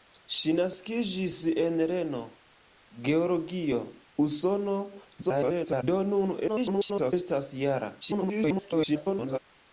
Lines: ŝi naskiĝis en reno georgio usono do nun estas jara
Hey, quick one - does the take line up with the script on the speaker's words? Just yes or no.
no